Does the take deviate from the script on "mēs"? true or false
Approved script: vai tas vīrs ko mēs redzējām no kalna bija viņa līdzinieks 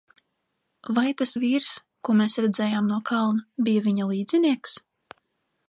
false